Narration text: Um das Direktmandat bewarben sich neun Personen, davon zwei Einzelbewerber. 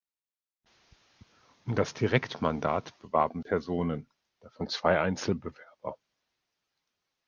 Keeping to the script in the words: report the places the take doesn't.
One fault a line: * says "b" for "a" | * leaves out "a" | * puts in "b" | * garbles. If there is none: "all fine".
* leaves out "sich neun"